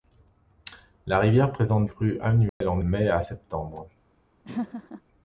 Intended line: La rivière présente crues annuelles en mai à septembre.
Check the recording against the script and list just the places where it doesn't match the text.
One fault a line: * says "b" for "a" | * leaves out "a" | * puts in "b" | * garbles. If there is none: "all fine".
all fine